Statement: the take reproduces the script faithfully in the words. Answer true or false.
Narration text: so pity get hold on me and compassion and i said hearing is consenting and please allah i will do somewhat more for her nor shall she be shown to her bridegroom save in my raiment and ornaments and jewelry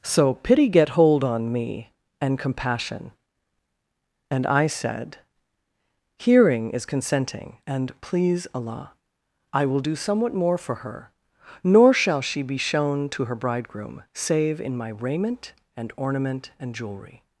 false